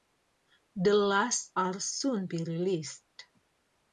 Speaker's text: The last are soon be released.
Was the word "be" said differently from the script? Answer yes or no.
no